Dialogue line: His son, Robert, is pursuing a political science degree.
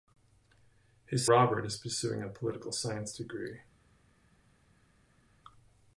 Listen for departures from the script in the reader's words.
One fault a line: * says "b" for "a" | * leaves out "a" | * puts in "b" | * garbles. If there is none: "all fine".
* leaves out "son"